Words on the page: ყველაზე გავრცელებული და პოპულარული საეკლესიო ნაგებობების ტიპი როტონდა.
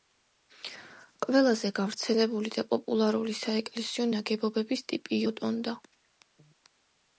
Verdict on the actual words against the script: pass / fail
pass